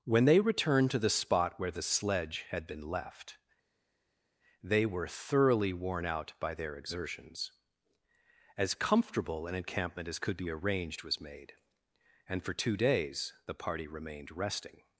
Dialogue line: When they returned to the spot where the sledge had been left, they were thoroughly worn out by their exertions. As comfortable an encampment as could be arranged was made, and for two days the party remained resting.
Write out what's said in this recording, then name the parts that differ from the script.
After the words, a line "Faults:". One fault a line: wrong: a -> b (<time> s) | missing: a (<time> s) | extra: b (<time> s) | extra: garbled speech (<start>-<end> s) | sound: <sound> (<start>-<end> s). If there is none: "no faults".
When they returned to the spot where the sledge had been left, they were thoroughly worn out by their exertions. As comfortable an encampment as could be arranged was made, and for two days the party remained resting.
Faults:
no faults